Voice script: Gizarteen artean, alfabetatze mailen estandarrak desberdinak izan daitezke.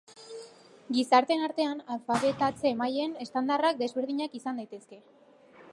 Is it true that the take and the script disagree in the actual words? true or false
false